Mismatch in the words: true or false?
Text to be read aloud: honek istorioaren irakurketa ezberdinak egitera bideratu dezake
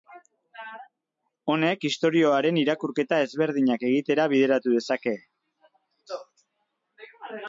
false